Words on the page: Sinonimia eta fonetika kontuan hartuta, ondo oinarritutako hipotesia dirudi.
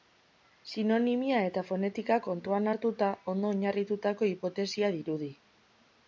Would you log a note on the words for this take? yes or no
no